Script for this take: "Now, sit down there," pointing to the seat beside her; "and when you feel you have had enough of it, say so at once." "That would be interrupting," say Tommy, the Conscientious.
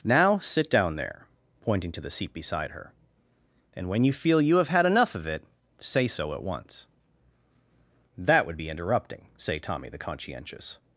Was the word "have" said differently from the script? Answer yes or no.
no